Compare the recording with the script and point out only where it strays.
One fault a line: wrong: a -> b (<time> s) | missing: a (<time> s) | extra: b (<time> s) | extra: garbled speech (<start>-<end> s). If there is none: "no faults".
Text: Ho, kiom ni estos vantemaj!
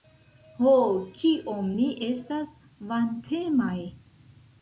wrong: estos -> estas (2.1 s)